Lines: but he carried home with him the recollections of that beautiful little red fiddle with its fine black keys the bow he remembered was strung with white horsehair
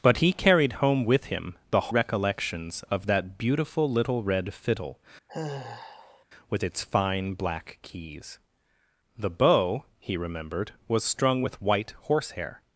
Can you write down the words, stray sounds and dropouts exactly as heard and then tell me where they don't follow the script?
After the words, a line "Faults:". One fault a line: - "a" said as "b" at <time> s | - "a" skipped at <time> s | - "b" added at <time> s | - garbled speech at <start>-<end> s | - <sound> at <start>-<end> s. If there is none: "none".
but he carried home with him the recollections of that beautiful little red fiddle with its fine black keys the bow he remembered was strung with white horsehair
Faults:
- sigh at 5.3-6.2 s